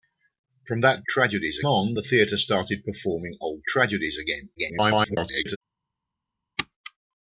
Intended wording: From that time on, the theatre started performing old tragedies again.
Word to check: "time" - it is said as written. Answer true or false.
false